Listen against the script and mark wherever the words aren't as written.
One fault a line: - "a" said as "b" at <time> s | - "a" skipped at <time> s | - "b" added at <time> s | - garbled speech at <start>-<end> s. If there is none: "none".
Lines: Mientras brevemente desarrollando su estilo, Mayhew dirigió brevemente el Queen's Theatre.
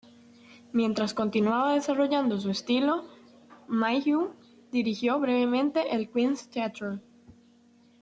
- "brevemente" said as "continuaba" at 1.1 s